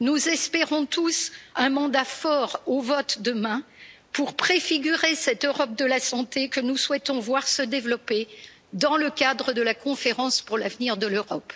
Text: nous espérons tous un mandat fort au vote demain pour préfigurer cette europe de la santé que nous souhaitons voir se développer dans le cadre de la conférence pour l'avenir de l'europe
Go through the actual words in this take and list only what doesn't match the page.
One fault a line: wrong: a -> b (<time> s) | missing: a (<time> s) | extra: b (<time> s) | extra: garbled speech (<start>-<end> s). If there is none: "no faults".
no faults